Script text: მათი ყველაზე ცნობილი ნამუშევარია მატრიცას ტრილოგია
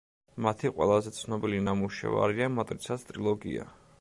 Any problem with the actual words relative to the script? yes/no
no